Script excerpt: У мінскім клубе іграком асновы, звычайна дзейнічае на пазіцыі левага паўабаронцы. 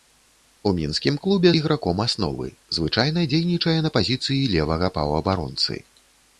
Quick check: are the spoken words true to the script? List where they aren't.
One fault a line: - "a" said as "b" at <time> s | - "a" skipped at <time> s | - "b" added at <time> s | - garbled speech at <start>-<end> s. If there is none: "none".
none